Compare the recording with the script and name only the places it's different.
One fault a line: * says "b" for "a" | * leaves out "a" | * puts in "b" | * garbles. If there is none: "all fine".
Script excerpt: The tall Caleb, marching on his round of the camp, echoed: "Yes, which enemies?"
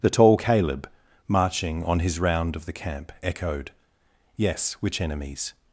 all fine